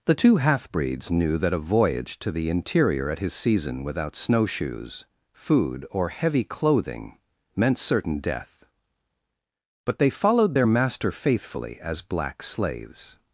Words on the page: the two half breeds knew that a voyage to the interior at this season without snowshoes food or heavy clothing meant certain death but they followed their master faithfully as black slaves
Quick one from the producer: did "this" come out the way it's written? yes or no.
no